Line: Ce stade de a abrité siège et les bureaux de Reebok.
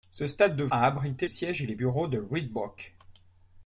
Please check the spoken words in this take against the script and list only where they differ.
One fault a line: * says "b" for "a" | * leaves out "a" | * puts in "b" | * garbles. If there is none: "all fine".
all fine